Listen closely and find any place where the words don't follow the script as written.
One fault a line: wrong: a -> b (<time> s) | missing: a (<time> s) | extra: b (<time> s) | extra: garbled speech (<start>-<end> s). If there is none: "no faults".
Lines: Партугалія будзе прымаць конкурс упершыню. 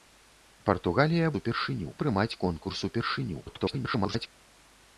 wrong: будзе -> упершыню (1.4 s)
extra: garbled speech (3.5-4.3 s)